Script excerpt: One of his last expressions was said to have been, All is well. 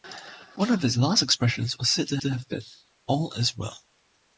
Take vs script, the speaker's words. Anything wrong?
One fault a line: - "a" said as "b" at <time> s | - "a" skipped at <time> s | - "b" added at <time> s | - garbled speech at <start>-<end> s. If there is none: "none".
- "to" added at 2.2 s